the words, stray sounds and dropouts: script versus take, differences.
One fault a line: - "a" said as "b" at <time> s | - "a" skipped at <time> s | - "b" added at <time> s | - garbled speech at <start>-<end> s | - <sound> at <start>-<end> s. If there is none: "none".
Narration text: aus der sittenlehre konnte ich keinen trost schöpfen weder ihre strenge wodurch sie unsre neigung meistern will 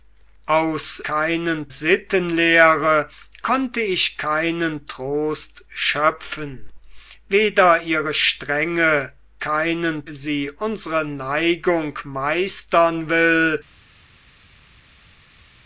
- "der" said as "keinen" at 1.0 s
- "wodurch" said as "keinen" at 9.4 s